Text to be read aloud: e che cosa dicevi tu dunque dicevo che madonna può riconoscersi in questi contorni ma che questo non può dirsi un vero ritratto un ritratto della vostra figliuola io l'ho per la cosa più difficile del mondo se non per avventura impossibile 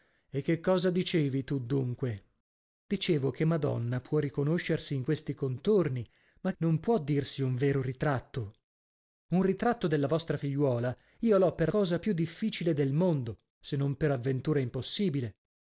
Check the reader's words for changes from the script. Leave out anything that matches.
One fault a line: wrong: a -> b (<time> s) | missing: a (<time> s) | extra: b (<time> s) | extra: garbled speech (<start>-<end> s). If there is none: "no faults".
missing: che questo (6.5 s)
missing: la (11.7 s)